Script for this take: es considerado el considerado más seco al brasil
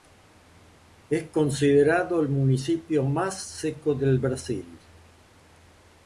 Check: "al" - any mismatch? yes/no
yes